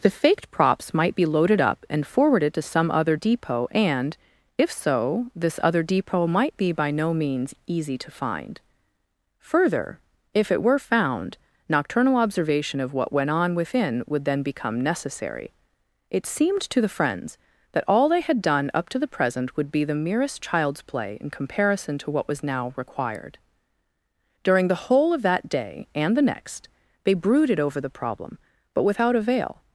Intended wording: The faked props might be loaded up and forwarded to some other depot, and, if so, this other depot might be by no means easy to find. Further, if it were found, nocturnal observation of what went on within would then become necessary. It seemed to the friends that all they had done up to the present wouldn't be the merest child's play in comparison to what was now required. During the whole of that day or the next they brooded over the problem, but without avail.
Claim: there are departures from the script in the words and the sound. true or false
true